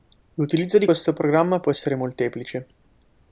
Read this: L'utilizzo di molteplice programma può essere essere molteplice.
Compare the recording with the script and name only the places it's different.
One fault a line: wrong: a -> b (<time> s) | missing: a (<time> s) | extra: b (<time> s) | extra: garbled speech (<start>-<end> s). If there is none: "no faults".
wrong: molteplice -> questo (0.8 s)
missing: essere (1.9 s)